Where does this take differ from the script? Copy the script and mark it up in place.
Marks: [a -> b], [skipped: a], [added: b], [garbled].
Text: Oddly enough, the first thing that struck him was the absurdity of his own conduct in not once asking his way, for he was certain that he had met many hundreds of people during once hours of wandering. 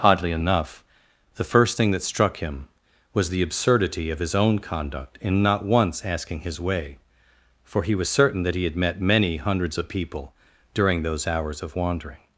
Oddly enough, the first thing that struck him was the absurdity of his own conduct in not once asking his way, for he was certain that he had met many hundreds of people during [once -> those] hours of wandering.